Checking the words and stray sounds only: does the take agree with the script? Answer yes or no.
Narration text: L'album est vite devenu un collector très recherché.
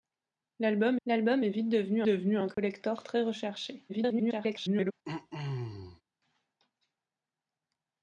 no